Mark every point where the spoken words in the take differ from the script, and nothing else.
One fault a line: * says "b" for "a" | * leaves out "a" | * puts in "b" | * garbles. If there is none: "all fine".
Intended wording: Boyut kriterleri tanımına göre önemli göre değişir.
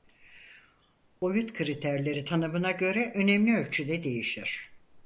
* says "ölçüde" for "göre"